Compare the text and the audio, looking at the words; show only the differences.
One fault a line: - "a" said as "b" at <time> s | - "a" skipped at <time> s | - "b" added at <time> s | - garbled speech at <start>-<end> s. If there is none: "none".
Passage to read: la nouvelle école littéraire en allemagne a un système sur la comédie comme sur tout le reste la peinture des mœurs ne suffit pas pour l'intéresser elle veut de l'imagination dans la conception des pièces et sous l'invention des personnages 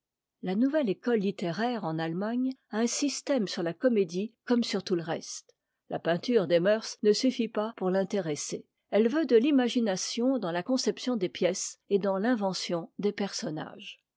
- "sous" said as "dans" at 12.0 s